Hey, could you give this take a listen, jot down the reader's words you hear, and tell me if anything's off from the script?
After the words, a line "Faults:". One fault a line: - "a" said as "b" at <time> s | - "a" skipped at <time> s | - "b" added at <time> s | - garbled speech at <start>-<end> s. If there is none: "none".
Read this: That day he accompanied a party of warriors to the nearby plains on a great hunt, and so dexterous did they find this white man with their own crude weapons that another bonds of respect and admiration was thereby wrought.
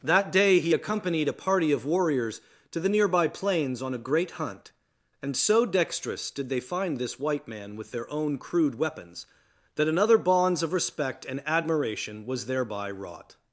That day he accompanied a party of warriors to the nearby plains on a great hunt, and so dexterous did they find this white man with their own crude weapons that another bonds of respect and admiration was thereby wrought.
Faults:
none